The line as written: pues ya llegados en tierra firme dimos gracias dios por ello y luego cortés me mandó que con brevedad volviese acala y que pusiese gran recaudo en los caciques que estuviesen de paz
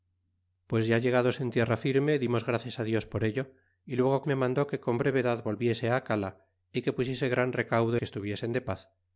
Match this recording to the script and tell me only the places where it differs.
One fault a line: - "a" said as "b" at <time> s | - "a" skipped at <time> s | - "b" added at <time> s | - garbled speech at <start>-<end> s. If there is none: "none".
- "cortés" skipped at 4.2 s
- "en los caciques" skipped at 8.0 s